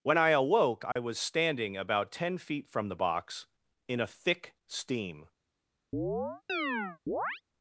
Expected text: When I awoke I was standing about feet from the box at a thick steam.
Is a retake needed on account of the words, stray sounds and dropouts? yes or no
yes